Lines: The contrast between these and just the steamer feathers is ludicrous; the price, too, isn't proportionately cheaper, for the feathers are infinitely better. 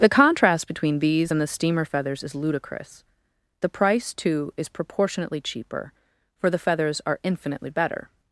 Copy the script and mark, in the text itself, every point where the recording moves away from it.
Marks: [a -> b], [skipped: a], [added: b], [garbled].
The contrast between these and [skipped: just] the steamer feathers is ludicrous; the price, too, [isn't -> is] proportionately cheaper, for the feathers are infinitely better.